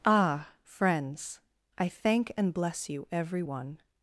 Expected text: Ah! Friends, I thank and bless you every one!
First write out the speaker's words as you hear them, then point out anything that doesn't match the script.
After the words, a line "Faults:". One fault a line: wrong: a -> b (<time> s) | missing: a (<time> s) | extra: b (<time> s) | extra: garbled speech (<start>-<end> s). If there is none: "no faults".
Ah! Friends, I thank and bless you every one!
Faults:
no faults